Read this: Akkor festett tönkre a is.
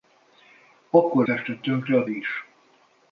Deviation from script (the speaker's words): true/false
false